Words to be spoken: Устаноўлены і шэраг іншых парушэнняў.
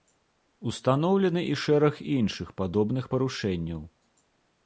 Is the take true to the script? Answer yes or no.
no